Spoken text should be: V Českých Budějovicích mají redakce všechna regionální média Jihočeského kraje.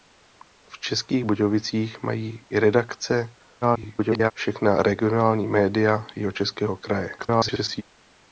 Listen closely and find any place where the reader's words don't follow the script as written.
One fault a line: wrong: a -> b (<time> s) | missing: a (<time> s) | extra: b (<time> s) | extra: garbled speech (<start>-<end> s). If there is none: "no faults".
extra: garbled speech (3.6-4.3 s)
extra: garbled speech (7.2-7.8 s)